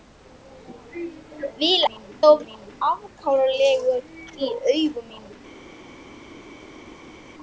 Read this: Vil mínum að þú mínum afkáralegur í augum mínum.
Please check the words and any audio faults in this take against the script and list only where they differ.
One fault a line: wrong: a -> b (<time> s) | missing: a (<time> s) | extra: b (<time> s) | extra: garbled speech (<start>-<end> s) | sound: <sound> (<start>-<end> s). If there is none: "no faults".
no faults